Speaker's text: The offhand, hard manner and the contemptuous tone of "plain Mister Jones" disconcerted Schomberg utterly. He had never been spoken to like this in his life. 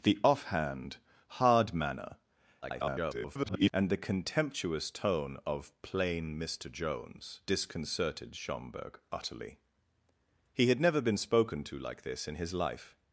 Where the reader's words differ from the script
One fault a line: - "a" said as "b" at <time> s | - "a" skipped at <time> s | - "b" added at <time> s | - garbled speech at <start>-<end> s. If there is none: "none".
- garbled speech at 2.6-3.7 s